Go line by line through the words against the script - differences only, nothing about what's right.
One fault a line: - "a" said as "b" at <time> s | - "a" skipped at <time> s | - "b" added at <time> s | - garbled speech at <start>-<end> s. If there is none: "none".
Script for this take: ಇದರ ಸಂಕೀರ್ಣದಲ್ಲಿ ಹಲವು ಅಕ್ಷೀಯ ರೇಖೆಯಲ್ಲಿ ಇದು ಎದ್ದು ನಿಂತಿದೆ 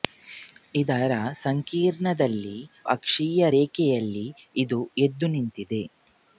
- "ಹಲವು" skipped at 2.5 s